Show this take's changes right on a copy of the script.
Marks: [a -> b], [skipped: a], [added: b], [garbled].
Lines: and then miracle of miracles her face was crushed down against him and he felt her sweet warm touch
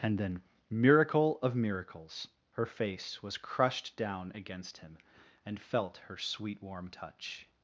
and then miracle of miracles her face was crushed down against him and [skipped: he] felt her sweet warm touch